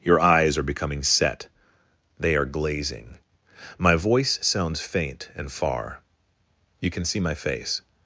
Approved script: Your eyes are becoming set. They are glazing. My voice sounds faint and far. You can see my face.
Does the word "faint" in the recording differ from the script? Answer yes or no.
no